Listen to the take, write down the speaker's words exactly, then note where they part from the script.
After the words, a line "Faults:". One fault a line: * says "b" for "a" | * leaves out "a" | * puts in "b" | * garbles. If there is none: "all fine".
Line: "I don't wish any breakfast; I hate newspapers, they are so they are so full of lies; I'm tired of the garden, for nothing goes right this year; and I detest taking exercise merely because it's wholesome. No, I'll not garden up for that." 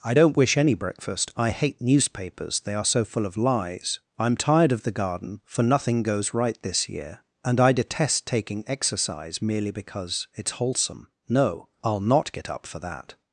"I don't wish any breakfast; I hate newspapers, they are so full of lies; I'm tired of the garden, for nothing goes right this year; and I detest taking exercise merely because it's wholesome. No, I'll not get up for that."
Faults:
* leaves out "they are so"
* says "get" for "garden"